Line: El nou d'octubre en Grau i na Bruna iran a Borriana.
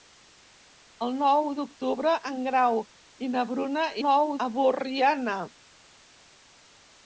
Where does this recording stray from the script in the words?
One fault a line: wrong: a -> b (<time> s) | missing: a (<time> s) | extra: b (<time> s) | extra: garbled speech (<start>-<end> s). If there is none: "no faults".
wrong: iran -> nou (4.0 s)